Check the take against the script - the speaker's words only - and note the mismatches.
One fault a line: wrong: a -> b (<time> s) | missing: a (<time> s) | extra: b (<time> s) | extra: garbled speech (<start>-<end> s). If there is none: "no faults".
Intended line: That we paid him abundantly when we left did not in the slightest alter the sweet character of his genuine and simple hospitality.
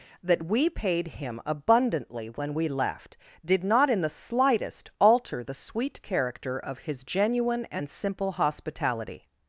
no faults